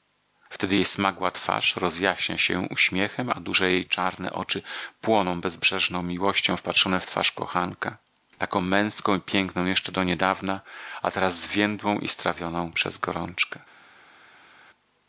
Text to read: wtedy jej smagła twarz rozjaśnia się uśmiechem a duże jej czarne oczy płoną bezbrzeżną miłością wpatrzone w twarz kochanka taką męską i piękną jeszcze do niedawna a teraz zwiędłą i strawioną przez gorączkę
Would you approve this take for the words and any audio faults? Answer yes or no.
yes